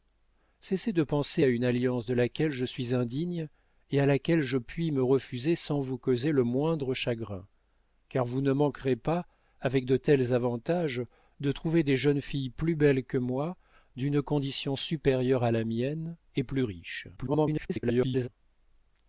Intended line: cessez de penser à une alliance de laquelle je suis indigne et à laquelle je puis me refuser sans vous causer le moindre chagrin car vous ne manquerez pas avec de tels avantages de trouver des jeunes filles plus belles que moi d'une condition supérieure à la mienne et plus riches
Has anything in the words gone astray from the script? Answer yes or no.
yes